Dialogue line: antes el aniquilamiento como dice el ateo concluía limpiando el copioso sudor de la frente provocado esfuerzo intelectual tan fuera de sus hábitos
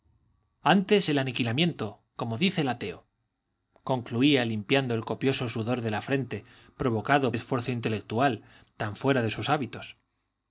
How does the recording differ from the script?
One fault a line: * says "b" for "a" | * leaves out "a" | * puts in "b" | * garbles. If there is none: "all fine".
all fine